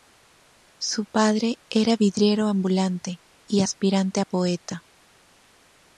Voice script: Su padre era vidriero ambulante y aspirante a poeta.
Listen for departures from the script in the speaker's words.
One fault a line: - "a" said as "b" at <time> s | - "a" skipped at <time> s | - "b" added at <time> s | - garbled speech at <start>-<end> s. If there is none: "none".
none